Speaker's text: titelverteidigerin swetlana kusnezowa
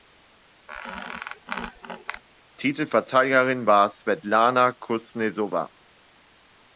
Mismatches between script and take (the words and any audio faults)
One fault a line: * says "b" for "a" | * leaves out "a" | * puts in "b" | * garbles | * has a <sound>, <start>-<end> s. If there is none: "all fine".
* has a squeak, 0.7-2.2 s
* puts in "war"